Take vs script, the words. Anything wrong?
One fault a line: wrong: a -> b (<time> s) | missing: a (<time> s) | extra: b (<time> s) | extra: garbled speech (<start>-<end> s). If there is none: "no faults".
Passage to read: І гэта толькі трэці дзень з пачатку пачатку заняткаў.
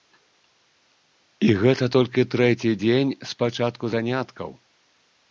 missing: пачатку (3.8 s)